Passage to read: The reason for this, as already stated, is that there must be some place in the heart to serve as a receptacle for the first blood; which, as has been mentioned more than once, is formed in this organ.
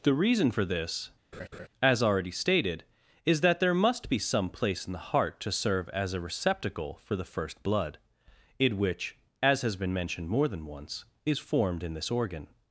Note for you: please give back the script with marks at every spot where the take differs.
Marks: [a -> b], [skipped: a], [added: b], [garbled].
The reason for this, as already stated, is that there must be some place in the heart to serve as a receptacle for the first blood; [added: in] which, as has been mentioned more than once, is formed in this organ.